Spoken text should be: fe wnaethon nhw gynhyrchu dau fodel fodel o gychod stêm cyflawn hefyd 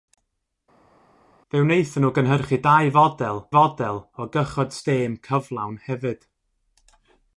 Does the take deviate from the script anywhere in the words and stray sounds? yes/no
no